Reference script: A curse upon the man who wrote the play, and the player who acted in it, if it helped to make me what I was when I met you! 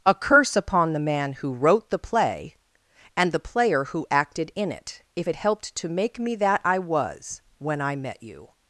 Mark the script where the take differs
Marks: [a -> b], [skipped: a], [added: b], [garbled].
A curse upon the man who wrote the play, and the player who acted in it, if it helped to make me [what -> that] I was when I met you!